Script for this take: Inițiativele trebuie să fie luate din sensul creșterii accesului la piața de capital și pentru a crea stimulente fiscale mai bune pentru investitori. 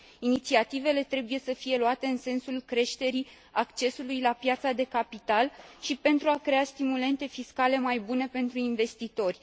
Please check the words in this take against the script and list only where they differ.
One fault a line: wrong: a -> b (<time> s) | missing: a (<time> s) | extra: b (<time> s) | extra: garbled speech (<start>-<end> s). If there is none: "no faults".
wrong: din -> în (2.1 s)